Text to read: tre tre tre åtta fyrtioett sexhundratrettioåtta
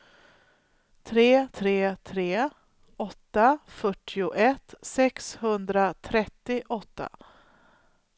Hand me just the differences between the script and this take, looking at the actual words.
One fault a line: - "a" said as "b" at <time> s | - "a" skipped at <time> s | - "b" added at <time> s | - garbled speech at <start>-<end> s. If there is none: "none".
none